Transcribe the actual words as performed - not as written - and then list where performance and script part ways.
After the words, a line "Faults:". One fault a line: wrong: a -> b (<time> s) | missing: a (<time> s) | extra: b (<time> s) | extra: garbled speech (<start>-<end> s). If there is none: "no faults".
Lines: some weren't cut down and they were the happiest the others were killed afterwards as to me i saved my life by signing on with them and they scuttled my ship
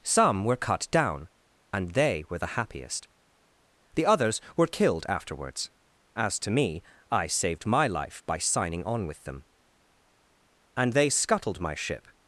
some were cut down and they were the happiest the others were killed afterwards as to me i saved my life by signing on with them and they scuttled my ship
Faults:
wrong: weren't -> were (0.5 s)